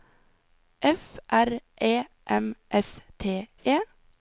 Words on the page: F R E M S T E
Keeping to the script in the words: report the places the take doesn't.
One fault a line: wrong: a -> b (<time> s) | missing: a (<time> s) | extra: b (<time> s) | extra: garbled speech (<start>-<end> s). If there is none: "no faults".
no faults